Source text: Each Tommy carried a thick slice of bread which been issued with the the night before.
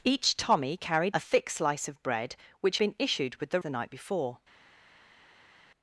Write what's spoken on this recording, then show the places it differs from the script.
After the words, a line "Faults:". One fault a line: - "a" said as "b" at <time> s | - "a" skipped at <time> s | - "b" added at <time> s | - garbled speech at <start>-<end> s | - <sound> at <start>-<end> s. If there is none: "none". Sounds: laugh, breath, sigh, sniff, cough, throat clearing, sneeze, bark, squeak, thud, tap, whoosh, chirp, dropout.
Each Tommy carried a thick slice of bread which been issued with the the night before.
Faults:
none